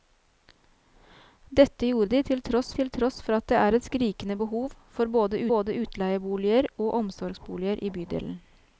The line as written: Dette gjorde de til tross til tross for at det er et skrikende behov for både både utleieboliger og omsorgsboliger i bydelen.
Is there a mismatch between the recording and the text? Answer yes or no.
no